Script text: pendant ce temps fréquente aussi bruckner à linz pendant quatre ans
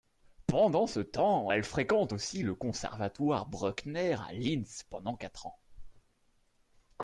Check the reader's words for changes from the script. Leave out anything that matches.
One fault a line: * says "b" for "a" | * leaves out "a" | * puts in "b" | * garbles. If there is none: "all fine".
* puts in "elle"
* puts in "le conservatoire"